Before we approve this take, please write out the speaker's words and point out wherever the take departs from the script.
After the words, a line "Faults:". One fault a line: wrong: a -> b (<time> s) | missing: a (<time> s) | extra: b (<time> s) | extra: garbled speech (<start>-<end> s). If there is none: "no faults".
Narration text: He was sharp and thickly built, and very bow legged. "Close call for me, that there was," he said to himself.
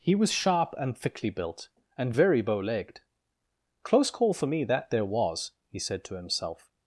He was sharp and thickly built, and very bow legged. "Close call for me, that there was," he said to himself.
Faults:
no faults